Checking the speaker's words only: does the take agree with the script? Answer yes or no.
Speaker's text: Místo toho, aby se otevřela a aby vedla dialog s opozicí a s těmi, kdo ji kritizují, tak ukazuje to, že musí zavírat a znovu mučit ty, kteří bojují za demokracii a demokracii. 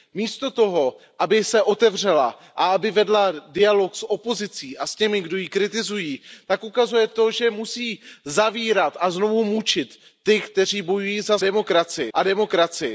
yes